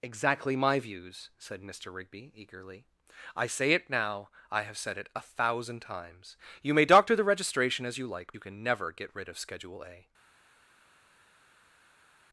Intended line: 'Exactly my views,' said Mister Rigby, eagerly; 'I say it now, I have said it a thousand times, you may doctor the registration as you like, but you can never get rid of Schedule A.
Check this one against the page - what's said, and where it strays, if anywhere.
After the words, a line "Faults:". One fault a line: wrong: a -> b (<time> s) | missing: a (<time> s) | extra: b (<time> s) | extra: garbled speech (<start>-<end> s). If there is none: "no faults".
'Exactly my views,' said Mister Rigby, eagerly; 'I say it now, I have said it a thousand times, you may doctor the registration as you like, you can never get rid of Schedule A.
Faults:
missing: but (8.3 s)